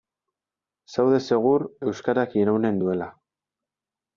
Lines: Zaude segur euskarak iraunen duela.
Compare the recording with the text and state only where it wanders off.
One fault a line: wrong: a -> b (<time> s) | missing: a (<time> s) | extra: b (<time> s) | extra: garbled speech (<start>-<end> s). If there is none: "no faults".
no faults